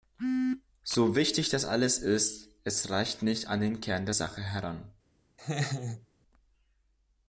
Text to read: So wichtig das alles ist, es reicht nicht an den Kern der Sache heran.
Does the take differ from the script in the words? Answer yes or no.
no